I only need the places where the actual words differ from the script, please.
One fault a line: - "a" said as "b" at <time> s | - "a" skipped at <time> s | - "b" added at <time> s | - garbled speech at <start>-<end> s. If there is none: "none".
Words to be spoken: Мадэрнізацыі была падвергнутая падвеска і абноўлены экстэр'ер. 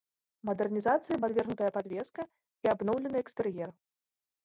- "была" skipped at 1.2 s